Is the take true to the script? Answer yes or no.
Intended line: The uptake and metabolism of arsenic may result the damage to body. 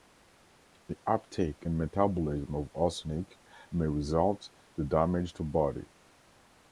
yes